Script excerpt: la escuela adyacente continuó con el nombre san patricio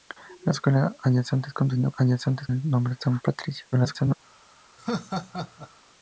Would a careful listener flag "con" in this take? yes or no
yes